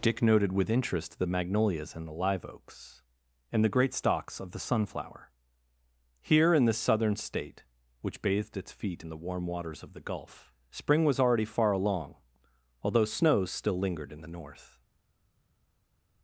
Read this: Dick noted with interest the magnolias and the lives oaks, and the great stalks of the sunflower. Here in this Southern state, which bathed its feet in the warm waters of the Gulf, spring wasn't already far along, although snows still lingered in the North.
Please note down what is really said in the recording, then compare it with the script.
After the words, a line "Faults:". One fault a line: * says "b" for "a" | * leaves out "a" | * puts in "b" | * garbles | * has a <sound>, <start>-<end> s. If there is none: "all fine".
Dick noted with interest the magnolias and the live oaks, and the great stalks of the sunflower. Here in this Southern state, which bathed its feet in the warm waters of the Gulf, spring was already far along, although snows still lingered in the North.
Faults:
* says "live" for "lives"
* says "was" for "wasn't"